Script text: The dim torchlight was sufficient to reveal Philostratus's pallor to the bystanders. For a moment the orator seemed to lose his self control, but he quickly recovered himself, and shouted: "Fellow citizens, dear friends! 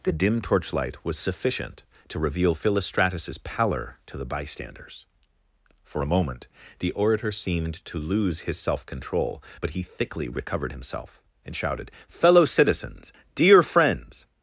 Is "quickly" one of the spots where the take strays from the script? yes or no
yes